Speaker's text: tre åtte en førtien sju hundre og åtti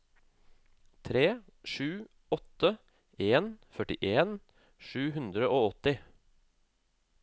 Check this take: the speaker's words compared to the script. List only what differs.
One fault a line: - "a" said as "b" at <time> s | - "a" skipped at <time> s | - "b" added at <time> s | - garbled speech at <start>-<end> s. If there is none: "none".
- "sju" added at 1.7 s